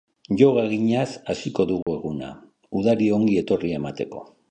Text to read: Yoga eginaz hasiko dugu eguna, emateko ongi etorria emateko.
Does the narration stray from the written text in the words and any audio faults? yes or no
yes